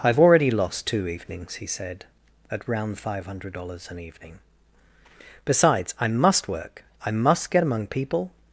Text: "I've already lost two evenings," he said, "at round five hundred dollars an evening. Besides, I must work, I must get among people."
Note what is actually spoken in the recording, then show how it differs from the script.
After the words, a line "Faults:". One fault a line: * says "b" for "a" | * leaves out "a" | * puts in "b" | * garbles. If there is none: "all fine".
"I've already lost two evenings," he said, "at round five hundred dollars an evening. Besides, I must work, I must get among people."
Faults:
all fine